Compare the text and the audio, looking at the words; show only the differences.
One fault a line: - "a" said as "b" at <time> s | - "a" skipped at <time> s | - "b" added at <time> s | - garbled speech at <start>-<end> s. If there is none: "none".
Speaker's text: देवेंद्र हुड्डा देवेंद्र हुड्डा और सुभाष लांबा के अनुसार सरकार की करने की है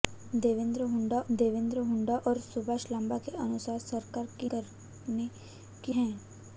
none